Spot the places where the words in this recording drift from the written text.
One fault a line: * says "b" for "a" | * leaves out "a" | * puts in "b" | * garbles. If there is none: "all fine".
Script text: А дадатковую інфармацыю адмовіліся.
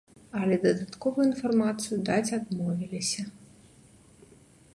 * says "Але" for "А"
* puts in "даць"